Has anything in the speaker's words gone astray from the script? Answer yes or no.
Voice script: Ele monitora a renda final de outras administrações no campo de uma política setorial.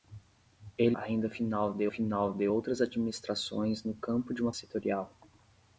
yes